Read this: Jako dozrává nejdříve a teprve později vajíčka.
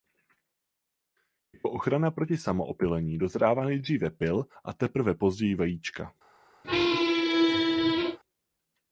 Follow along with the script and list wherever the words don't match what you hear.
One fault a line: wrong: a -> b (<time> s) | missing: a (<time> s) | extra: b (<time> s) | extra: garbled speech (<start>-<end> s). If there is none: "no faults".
extra: ochrana proti samoopylení (1.7 s)
extra: pyl (4.1 s)